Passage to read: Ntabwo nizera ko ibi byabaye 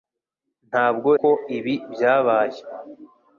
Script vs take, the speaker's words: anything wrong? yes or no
yes